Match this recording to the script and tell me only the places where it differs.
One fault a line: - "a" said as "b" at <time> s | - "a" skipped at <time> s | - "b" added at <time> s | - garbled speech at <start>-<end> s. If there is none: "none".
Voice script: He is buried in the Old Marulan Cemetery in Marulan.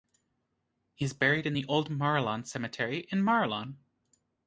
none